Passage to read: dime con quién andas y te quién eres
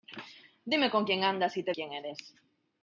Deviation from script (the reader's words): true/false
false